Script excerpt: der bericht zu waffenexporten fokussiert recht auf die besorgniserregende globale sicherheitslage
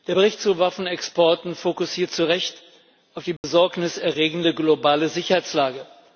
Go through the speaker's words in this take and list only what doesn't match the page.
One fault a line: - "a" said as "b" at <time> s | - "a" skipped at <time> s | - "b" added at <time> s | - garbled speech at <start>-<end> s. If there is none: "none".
- "zu" added at 2.1 s